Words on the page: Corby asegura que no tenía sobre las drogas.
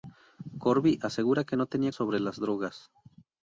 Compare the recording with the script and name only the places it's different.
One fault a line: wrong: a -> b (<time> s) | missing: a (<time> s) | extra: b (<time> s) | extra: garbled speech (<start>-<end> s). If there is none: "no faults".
no faults